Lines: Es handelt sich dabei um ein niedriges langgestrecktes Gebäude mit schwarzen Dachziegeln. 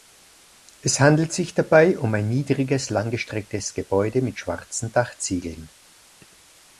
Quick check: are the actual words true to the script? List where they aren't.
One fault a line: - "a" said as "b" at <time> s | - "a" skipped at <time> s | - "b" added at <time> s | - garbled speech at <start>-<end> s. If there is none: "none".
none